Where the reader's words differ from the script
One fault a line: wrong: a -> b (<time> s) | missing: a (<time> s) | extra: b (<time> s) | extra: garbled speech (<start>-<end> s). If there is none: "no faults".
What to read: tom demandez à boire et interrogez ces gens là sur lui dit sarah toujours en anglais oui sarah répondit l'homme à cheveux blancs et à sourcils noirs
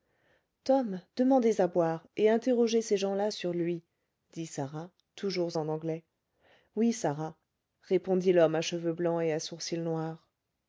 no faults